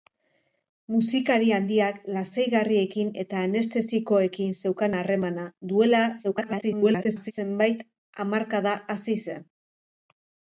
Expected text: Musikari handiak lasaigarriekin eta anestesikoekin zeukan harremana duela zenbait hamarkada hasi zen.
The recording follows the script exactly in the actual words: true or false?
false